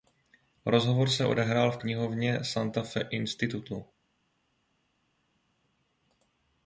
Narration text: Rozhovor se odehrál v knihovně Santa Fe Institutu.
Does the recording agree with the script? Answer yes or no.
yes